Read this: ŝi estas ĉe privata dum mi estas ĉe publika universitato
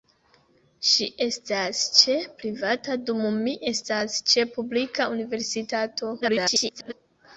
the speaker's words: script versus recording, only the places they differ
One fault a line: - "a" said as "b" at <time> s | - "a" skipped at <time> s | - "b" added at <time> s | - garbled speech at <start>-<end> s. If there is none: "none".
- garbled speech at 6.2-6.9 s